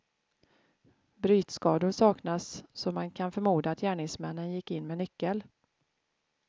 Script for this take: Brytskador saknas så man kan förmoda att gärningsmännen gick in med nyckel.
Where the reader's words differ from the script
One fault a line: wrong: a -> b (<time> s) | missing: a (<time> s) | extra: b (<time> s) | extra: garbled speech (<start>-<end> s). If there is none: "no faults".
no faults